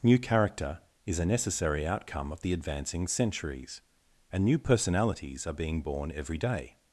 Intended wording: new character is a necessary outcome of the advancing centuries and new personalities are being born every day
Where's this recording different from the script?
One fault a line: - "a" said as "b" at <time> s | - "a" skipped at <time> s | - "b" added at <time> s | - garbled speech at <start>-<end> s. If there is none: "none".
none